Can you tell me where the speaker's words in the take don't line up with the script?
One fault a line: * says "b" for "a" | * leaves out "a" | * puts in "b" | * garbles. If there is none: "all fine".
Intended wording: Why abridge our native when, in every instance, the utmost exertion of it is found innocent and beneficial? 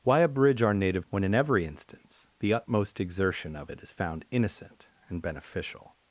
all fine